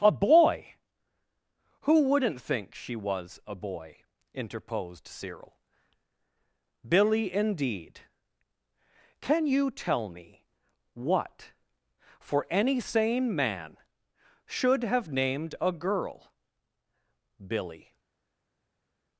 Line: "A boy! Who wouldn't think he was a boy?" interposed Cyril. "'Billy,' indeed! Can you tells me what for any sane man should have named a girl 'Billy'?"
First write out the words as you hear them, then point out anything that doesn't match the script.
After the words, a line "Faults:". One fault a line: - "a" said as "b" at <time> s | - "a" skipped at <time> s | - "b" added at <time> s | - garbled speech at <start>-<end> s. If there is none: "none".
"A boy! Who wouldn't think she was a boy?" interposed Cyril. "'Billy,' indeed! Can you tell me what for any sane man should have named a girl 'Billy'?"
Faults:
- "he" said as "she" at 2.7 s
- "tells" said as "tell" at 9.7 s